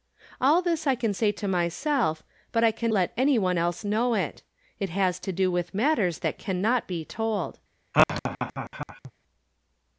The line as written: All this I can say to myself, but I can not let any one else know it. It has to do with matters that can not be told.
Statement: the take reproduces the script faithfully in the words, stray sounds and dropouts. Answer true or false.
false